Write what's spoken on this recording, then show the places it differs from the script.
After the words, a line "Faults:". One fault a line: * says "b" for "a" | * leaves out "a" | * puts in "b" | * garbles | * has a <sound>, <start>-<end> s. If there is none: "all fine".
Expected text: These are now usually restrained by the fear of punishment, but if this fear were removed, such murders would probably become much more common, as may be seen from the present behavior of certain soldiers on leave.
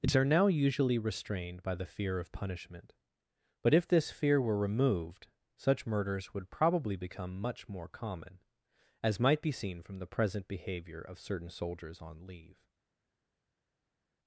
These are now usually restrained by the fear of punishment, but if this fear were removed, such murders would probably become much more common, as might be seen from the present behavior of certain soldiers on leave.
Faults:
* says "might" for "may"